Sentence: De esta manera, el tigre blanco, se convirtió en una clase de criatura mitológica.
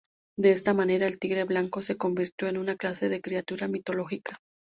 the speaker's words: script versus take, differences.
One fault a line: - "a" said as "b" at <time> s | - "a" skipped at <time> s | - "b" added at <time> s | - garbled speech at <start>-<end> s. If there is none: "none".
none